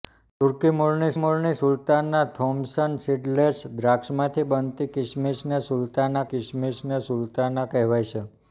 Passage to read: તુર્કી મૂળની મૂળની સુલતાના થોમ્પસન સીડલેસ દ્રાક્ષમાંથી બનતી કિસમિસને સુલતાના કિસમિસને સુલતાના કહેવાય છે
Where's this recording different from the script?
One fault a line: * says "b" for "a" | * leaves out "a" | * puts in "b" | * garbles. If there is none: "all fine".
all fine